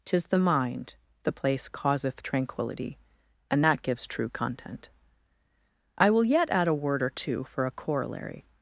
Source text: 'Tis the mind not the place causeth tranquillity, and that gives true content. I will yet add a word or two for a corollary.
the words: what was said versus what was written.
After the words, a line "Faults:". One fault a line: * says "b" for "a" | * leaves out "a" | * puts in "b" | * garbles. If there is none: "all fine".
'Tis the mind the place causeth tranquillity, and that gives true content. I will yet add a word or two for a corollary.
Faults:
* leaves out "not"